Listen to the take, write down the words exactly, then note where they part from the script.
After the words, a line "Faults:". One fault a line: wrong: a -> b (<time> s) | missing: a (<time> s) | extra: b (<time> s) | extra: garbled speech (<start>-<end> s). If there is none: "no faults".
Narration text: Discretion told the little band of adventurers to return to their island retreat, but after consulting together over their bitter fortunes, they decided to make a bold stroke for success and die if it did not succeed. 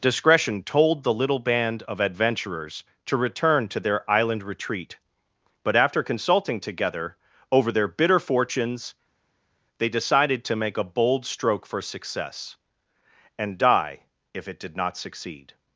Discretion told the little band of adventurers to return to their island retreat, but after consulting together over their bitter fortunes, they decided to make a bold stroke for success and die if it did not succeed.
Faults:
no faults